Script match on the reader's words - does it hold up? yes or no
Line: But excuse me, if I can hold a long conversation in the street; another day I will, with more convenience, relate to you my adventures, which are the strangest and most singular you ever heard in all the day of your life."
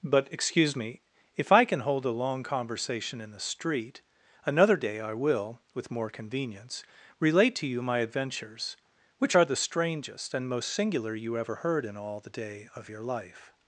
yes